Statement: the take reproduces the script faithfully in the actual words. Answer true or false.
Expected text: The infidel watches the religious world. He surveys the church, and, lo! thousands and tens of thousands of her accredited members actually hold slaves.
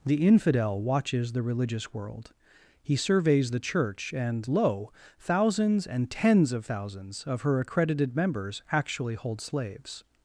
true